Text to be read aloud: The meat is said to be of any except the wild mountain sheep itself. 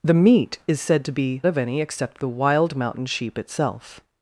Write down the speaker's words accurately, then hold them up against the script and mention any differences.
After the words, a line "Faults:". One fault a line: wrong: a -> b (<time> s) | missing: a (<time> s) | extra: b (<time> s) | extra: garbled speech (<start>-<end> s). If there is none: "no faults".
The meat is said to be of any except the wild mountain sheep itself.
Faults:
no faults